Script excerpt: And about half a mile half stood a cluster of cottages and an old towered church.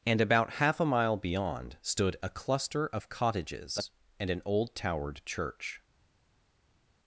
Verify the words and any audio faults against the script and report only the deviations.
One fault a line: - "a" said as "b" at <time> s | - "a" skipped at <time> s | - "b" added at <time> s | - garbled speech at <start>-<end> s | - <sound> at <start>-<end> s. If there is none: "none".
- "half" said as "beyond" at 1.1 s